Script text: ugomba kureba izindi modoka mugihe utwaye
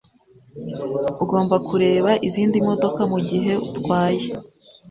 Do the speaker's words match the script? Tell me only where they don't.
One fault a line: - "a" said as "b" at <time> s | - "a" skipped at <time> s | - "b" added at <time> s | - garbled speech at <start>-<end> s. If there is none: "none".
none